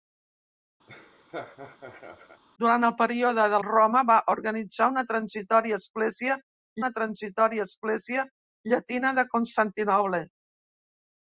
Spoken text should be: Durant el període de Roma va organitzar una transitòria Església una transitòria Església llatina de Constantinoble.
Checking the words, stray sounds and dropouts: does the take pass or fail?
fail